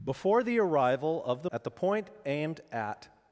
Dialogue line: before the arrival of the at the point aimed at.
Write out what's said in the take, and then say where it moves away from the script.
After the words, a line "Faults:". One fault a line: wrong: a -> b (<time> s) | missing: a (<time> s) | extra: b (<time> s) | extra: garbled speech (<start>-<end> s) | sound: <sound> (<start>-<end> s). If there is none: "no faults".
before the arrival of the at the point aimed at.
Faults:
no faults